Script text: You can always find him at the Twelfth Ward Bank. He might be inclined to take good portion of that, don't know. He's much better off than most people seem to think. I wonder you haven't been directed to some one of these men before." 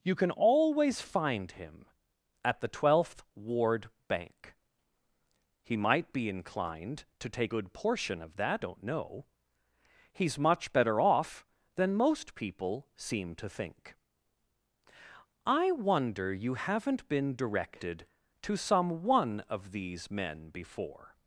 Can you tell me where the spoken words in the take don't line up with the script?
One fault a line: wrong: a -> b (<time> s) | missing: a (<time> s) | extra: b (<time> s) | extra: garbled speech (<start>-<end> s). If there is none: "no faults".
no faults